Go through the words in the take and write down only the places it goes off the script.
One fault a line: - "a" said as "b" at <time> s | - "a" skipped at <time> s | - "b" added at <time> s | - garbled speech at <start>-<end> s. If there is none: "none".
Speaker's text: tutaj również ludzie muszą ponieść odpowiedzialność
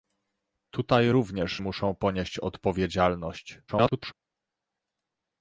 - "ludzie" skipped at 1.6 s
- garbled speech at 3.7-4.1 s